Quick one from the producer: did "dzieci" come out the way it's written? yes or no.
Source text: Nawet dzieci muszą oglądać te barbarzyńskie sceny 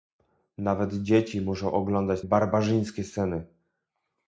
yes